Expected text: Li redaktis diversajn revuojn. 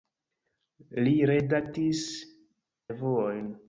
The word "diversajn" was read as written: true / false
false